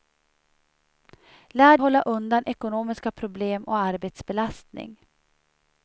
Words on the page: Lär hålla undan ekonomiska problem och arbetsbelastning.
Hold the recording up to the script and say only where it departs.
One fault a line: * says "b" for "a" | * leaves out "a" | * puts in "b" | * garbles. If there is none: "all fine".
all fine